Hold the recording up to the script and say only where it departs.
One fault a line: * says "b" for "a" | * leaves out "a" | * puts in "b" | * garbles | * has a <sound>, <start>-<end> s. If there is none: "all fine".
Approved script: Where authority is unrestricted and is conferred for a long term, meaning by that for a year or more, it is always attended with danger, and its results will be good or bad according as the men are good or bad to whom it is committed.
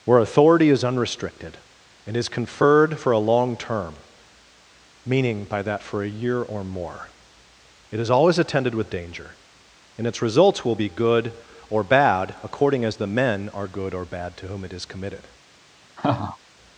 * has a laugh, 16.0-16.4 s